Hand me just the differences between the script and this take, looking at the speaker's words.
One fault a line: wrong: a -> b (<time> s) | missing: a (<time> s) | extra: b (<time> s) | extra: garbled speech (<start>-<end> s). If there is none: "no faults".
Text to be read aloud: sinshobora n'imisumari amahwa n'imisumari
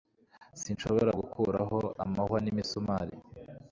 wrong: n'imisumari -> gukuraho (1.2 s)